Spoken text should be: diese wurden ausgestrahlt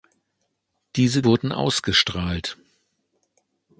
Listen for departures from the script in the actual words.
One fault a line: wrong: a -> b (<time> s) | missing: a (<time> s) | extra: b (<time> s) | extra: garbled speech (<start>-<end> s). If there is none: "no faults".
no faults